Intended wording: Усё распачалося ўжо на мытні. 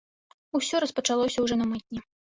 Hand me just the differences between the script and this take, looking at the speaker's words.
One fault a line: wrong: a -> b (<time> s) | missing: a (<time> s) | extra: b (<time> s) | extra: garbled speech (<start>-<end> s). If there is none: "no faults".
no faults